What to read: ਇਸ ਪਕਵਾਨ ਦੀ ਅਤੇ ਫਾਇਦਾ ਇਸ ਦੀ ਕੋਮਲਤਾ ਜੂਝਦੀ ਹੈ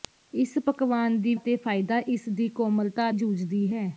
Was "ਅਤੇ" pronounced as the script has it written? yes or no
yes